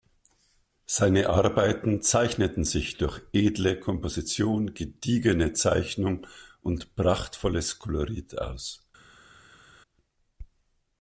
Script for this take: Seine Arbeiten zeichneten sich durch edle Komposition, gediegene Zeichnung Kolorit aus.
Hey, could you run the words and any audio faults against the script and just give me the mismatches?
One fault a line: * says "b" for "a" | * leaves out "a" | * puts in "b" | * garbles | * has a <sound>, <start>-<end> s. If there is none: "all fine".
* puts in "und prachtvolles"